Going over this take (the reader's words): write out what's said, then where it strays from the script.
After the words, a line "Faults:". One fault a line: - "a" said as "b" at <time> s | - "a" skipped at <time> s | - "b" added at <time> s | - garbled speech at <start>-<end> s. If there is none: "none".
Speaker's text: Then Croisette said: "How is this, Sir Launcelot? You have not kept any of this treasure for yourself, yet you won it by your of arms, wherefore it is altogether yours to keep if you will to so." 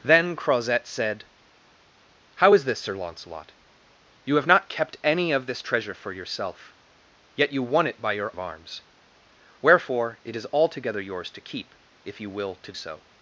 Then Croisette said: "How is this, Sir Launcelot? You have not kept any of this treasure for yourself, yet you won it by your of arms, wherefore it is altogether yours to keep if you will to so."
Faults:
none